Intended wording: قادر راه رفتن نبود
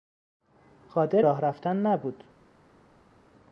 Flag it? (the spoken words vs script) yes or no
no